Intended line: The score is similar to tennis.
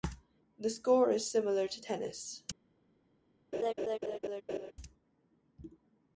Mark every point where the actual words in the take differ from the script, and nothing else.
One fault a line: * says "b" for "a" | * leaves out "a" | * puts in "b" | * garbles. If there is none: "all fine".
all fine